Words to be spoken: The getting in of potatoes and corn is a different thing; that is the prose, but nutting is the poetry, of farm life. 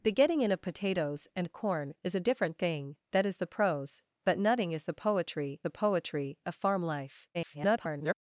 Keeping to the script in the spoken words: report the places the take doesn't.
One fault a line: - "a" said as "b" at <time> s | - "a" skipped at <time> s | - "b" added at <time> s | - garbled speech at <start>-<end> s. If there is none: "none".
- "the poetry" added at 5.6 s
- garbled speech at 7.3-8.1 s